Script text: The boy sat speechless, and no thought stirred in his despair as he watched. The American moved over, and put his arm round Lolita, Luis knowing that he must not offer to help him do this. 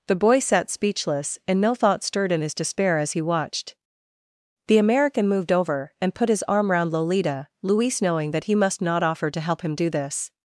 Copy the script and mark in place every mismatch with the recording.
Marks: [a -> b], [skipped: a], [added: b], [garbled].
The boy sat speechless, and no thought stirred in his despair as he watched. The American moved over, and put his arm round Lolita, Luis knowing that he must not offer to help him do this.